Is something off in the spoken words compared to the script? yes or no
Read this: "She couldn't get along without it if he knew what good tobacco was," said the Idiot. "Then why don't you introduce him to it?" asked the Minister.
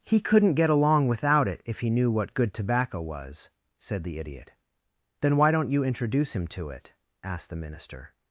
yes